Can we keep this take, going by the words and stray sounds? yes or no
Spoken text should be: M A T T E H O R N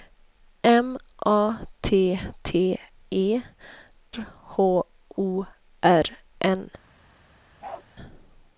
no